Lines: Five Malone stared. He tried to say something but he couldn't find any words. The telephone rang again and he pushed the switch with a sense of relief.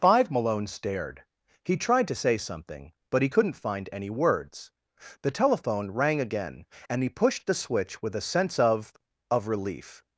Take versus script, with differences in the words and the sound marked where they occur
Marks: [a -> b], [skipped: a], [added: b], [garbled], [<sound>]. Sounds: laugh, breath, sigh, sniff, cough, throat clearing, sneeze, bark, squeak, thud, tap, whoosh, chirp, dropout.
Five Malone stared. He tried to say something but he couldn't find any words. The telephone rang again and he pushed the switch with a sense of [added: of] relief.